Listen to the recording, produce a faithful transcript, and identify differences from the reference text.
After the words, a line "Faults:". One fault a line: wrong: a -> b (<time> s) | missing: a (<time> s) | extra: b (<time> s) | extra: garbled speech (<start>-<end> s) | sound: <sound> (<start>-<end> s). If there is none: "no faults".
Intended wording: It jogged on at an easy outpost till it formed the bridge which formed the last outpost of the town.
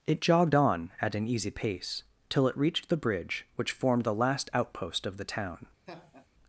It jogged on at an easy pace till it reached the bridge which formed the last outpost of the town.
Faults:
wrong: outpost -> pace (1.5 s)
wrong: formed -> reached (2.6 s)
sound: laugh (5.9-6.3 s)